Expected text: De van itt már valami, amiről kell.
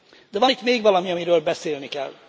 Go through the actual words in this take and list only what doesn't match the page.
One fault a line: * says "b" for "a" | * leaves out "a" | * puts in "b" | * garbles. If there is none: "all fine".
* says "még" for "már"
* puts in "beszélni"